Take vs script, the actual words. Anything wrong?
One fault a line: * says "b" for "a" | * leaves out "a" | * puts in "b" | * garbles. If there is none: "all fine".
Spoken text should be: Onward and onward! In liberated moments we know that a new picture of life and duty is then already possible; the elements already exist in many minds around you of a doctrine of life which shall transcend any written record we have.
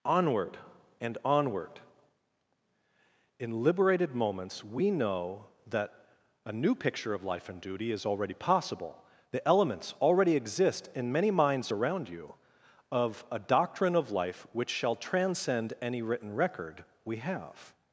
* leaves out "then"